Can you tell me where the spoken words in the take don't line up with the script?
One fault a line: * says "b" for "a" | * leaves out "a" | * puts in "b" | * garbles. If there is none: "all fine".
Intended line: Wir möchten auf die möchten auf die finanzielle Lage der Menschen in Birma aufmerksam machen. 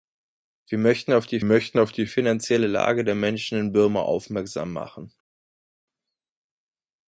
all fine